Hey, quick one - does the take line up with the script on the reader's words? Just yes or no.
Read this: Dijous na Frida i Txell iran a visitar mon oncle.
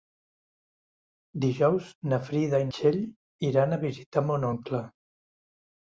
yes